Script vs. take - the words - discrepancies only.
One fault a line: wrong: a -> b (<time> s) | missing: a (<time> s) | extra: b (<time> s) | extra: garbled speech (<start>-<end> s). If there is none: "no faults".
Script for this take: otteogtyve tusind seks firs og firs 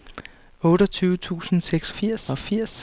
no faults